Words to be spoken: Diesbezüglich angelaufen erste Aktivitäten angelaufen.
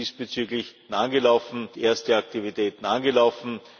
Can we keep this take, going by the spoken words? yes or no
yes